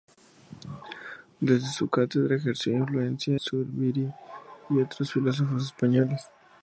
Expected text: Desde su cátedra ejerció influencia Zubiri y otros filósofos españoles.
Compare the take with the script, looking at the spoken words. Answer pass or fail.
pass